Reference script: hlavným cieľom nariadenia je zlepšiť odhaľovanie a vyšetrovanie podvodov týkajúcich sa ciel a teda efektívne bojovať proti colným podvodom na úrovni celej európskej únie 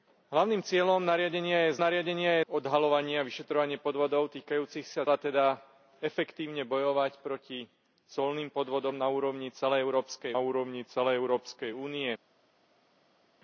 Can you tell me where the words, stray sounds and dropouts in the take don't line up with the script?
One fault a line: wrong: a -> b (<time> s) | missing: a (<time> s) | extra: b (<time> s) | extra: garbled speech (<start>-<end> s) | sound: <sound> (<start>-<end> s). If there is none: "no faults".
wrong: zlepšiť -> nariadenia (1.8 s)
missing: ciel (5.1 s)
extra: úrovni celej európskej (10.4 s)